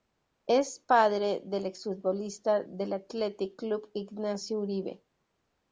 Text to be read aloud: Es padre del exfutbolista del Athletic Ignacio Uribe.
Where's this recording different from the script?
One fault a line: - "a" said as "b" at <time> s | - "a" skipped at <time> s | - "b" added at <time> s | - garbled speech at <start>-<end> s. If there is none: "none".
- "Club" added at 3.5 s